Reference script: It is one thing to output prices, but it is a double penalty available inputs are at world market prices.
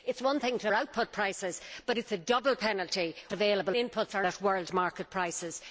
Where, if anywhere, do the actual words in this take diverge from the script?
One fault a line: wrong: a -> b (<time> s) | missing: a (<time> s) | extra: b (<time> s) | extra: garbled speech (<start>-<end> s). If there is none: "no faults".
no faults